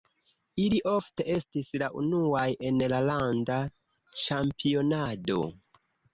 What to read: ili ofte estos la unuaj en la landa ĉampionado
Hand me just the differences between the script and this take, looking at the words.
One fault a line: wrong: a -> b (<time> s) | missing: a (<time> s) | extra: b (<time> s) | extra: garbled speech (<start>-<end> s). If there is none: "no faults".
wrong: estos -> estis (1.3 s)